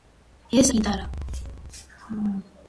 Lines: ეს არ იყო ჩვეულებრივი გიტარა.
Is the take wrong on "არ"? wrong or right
wrong